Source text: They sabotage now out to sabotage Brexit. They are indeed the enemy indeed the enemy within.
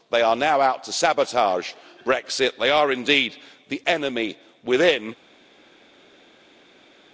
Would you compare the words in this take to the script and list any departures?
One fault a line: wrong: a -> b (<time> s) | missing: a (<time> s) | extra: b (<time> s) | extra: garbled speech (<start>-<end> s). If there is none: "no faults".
wrong: sabotage -> are (0.2 s)
missing: indeed the enemy (4.4 s)